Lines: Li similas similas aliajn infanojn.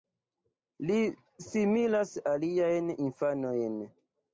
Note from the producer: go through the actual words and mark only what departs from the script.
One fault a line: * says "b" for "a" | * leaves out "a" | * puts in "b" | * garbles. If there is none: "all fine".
* leaves out "similas"